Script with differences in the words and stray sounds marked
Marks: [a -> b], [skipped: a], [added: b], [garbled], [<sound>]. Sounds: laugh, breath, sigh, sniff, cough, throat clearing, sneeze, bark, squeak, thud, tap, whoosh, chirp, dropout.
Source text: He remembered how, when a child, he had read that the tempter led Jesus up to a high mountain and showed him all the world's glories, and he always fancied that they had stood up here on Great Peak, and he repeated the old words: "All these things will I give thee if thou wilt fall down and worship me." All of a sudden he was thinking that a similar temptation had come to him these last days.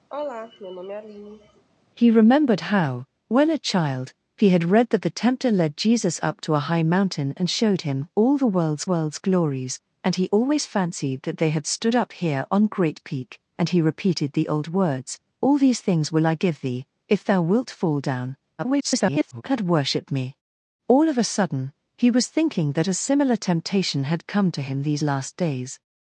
[sigh] He remembered how, when a child, he had read that the tempter led Jesus up to a high mountain and showed him all the world's [added: world's] glories, and he always fancied that they had stood up here on Great Peak, and he repeated the old words: "All these things will I give thee if thou wilt fall down [garbled] and worship me." All of a sudden he was thinking that a similar temptation had come to him these last days.